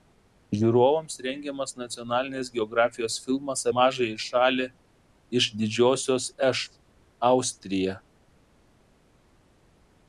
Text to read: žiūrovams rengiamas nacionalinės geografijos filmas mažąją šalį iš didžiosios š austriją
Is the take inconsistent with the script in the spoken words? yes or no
no